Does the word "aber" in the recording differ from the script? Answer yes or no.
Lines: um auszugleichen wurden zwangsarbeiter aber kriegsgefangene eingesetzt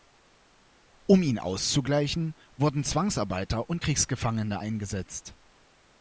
yes